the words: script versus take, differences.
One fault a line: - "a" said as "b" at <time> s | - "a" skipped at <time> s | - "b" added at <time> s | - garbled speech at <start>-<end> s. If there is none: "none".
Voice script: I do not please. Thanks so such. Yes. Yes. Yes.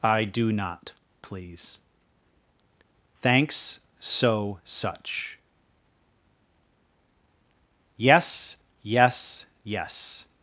none